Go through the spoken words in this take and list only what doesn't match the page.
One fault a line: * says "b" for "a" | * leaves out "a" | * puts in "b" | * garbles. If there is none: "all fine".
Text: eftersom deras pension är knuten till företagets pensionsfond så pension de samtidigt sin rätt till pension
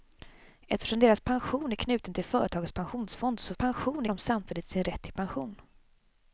all fine